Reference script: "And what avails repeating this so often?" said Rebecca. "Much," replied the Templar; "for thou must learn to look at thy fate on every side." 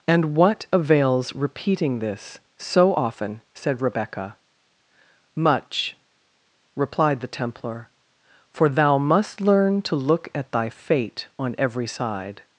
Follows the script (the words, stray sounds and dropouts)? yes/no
yes